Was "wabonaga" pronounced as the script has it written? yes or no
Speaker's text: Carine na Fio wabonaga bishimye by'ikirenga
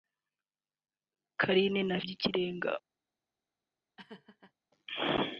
no